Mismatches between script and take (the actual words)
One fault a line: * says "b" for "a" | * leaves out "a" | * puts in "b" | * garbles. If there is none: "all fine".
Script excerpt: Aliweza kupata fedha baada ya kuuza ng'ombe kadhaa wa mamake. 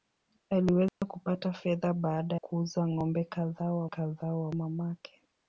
* leaves out "ya"
* puts in "kadhaa wa"